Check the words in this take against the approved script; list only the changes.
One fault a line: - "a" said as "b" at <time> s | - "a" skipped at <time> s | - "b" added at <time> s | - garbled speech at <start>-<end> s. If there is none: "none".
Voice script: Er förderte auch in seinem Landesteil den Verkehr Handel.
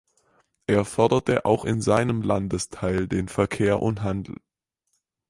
- "und" added at 3.8 s